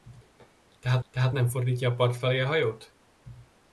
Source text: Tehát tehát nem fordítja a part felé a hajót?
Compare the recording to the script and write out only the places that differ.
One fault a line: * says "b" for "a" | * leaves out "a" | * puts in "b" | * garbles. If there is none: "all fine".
all fine